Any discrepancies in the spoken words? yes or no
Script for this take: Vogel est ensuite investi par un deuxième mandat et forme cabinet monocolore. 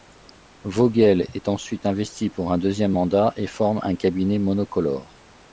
yes